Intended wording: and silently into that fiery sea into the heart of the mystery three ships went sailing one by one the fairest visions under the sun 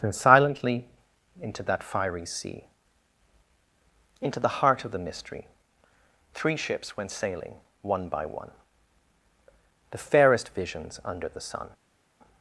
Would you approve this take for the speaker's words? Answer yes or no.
yes